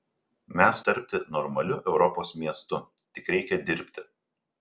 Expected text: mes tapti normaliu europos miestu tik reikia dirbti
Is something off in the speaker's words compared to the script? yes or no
no